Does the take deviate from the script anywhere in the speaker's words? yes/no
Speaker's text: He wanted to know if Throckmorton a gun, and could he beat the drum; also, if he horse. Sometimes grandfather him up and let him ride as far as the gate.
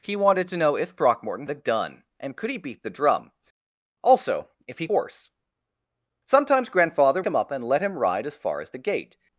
no